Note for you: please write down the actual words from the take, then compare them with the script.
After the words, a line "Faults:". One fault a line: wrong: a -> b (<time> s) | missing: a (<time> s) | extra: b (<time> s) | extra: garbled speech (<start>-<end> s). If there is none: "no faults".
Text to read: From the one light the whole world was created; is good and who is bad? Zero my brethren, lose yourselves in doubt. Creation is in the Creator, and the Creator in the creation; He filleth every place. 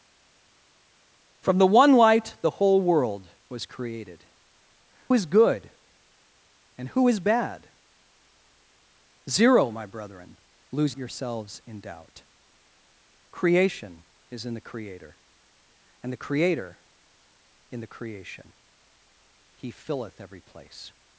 From the one light the whole world was created; is good and who is bad? Zero my brethren, lose yourselves in doubt. Creation is in the Creator, and the Creator in the creation; He filleth every place.
Faults:
no faults